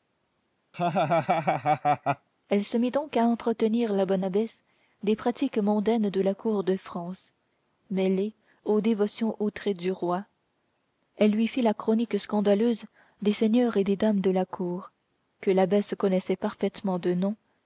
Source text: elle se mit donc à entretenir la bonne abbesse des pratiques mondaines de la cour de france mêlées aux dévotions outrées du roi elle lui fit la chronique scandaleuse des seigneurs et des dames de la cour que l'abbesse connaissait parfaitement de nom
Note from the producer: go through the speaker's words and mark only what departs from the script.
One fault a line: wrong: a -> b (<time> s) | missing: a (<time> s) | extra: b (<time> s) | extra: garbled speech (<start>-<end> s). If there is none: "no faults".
no faults